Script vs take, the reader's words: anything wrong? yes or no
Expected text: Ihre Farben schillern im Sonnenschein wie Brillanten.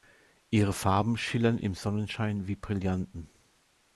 no